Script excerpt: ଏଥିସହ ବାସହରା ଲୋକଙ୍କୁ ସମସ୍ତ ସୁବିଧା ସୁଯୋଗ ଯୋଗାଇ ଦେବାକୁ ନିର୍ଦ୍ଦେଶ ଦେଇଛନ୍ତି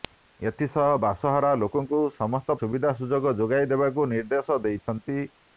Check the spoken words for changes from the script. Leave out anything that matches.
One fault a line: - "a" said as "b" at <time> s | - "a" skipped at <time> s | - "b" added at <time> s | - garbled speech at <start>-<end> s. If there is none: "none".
none